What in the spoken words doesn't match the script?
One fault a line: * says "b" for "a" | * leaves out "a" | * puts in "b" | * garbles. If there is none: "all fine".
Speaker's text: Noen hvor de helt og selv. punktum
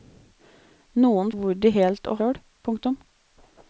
all fine